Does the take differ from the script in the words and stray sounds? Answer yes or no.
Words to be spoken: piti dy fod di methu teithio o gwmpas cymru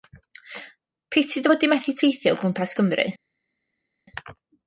no